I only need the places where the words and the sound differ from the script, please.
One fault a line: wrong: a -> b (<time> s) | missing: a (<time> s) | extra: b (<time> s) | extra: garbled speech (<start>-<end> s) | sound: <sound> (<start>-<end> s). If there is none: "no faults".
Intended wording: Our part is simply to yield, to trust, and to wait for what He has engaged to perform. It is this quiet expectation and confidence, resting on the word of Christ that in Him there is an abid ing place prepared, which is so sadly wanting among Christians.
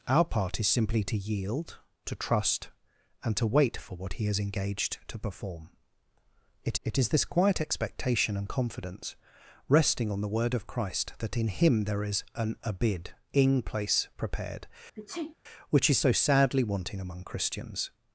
extra: it (6.8 s)
sound: sneeze (15.0-15.4 s)